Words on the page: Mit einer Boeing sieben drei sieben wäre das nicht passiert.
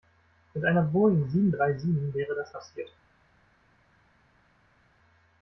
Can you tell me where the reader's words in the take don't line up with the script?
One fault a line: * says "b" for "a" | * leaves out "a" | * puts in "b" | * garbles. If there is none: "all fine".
* leaves out "nicht"